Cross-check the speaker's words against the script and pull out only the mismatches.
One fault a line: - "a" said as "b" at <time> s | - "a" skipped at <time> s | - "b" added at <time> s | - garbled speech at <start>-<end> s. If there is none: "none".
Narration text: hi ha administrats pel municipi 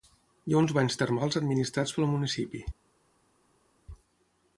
- "uns banys termals" added at 0.6 s